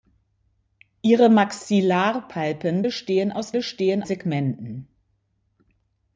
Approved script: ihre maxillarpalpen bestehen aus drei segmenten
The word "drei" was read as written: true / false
false